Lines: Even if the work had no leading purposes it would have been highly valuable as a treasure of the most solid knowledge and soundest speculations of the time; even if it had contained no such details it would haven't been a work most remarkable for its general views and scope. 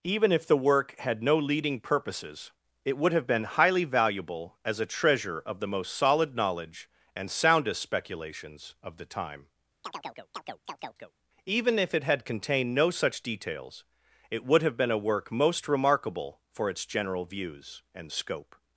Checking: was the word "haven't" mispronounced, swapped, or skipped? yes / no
yes